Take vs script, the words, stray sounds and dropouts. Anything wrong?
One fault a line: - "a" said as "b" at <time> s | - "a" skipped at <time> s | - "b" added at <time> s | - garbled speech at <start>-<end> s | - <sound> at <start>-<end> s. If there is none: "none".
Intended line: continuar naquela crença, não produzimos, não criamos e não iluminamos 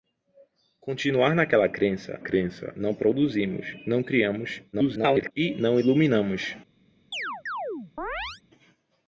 - "crença" added at 2.2 s
- garbled speech at 4.7-5.3 s
- chirp at 7.1-8.4 s